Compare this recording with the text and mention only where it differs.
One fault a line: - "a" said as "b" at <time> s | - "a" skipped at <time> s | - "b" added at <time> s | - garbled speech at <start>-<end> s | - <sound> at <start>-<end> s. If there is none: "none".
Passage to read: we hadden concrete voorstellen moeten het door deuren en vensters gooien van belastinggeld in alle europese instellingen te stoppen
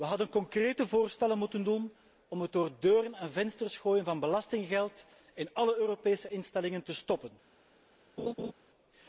- "doen om" added at 1.6 s
- laugh at 8.2-8.5 s